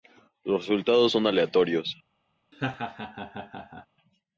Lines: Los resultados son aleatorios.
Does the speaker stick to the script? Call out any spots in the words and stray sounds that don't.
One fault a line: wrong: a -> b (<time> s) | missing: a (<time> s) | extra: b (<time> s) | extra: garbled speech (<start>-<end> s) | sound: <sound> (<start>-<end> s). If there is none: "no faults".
sound: laugh (2.5-3.9 s)